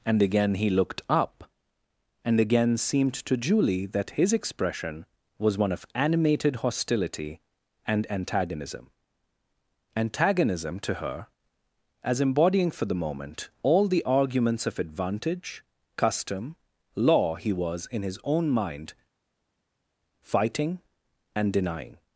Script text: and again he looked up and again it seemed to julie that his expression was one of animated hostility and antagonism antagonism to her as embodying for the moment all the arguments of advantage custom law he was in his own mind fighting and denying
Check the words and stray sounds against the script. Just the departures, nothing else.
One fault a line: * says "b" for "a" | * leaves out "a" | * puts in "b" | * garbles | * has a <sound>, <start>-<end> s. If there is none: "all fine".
* leaves out "it"